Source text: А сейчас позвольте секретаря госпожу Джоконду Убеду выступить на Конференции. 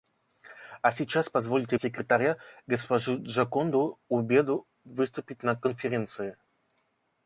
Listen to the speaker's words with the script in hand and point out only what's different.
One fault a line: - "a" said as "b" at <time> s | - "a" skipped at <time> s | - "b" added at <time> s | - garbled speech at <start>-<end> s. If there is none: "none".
none